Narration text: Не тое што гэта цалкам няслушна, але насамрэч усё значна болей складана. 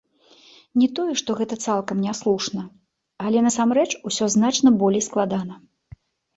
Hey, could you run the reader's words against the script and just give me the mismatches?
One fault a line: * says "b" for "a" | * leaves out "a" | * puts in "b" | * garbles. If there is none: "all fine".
all fine